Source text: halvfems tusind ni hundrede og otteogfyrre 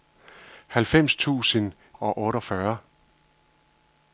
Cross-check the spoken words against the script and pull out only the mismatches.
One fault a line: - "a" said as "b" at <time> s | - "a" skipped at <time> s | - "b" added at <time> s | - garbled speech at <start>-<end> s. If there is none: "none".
- "ni hundrede" skipped at 1.7 s